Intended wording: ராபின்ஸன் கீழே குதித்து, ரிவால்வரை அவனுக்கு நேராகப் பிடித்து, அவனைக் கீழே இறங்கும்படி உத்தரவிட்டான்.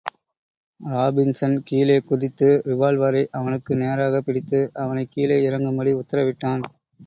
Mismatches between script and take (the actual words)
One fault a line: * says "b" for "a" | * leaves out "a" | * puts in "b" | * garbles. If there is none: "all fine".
all fine